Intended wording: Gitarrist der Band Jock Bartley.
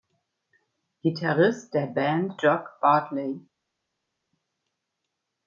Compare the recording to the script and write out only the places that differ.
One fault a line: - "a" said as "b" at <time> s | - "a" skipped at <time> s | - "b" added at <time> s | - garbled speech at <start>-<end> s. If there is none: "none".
none